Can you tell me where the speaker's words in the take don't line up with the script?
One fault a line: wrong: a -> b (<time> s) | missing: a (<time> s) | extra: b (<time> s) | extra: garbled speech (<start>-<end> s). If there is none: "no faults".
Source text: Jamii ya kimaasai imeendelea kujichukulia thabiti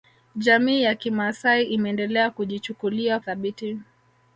no faults